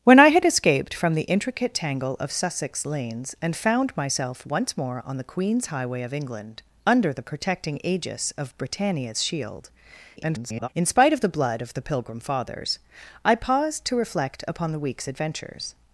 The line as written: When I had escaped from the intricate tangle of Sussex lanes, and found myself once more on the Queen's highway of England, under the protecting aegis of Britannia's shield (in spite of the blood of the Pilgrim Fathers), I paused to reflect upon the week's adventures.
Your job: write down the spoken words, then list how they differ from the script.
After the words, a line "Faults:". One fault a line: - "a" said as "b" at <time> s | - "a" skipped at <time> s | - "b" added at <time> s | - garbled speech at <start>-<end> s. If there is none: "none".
When I had escaped from the intricate tangle of Sussex lanes, and found myself once more on the Queen's highway of England, under the protecting aegis of Britannia's shield [garbled] (in spite of the blood of the Pilgrim Fathers), I paused to reflect upon the week's adventures.
Faults:
- garbled speech at 10.2-10.7 s